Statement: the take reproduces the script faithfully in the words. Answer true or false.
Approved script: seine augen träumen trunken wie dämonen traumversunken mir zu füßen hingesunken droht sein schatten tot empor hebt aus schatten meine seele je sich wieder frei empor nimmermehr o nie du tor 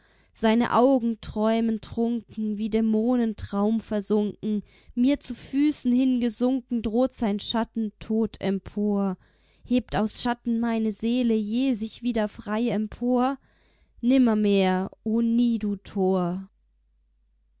true